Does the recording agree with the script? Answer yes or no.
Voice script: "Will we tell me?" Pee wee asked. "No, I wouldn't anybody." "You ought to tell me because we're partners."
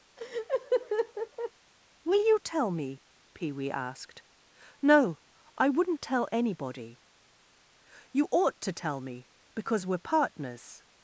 no